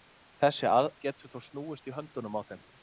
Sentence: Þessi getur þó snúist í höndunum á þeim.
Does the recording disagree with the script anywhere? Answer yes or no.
no